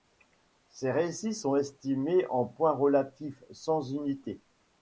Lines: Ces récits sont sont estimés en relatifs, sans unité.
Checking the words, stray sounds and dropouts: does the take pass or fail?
fail